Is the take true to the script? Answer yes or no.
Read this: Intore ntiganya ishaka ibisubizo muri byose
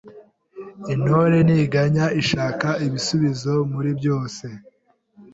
yes